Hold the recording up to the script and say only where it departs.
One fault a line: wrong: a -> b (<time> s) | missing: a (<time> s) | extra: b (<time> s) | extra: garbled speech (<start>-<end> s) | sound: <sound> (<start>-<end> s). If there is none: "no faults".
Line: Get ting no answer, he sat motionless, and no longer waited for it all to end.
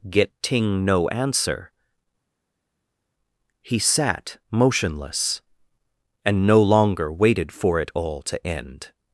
no faults